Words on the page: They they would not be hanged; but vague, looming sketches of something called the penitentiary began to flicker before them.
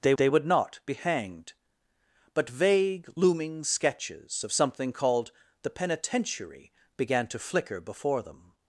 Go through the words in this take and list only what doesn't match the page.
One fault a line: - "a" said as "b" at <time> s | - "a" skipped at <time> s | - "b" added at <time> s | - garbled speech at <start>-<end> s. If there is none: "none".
none